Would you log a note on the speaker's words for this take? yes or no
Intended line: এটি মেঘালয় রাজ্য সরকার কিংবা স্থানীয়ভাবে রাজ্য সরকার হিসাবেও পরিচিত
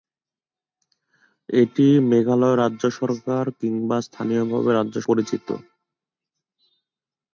yes